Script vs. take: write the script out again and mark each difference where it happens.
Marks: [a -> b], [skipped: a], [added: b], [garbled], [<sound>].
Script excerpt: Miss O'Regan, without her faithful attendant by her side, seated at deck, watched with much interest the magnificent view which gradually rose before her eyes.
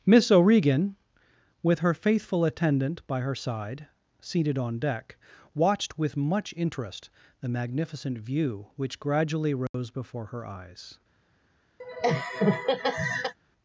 Miss O'Regan, [without -> with] her faithful attendant by her side, seated [at -> on] deck, watched with much interest the magnificent view which gradually rose [dropout] before her eyes. [laugh]